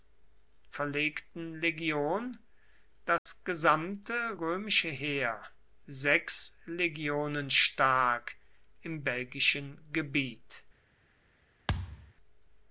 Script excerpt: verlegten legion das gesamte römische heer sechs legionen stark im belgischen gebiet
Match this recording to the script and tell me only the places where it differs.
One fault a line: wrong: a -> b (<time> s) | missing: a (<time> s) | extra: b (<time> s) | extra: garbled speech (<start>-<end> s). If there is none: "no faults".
no faults